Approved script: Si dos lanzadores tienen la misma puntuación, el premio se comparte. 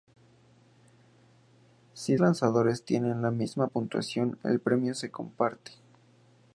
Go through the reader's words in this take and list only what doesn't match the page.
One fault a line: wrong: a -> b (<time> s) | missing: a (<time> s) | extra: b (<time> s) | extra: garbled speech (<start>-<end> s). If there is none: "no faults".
missing: dos (2.1 s)